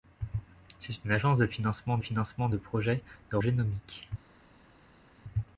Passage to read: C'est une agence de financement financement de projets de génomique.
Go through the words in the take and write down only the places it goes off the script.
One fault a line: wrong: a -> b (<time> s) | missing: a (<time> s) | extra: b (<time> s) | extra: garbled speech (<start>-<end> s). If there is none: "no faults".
no faults